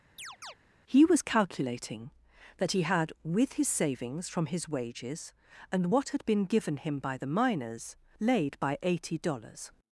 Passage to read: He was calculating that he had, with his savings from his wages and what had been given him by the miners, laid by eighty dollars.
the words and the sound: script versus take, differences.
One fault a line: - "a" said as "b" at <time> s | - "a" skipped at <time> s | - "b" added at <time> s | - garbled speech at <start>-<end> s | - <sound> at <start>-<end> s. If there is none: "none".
- chirp at 0.2-0.6 s